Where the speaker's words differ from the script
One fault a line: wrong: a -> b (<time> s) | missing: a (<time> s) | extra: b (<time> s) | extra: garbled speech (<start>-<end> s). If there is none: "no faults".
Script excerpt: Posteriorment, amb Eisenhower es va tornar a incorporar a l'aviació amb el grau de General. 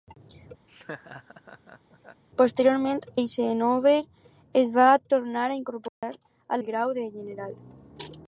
missing: amb (3.0 s)
missing: l'aviació amb (6.6 s)